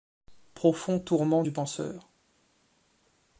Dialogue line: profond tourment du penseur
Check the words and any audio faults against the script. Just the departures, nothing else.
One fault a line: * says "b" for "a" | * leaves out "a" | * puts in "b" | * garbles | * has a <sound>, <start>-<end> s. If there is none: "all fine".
all fine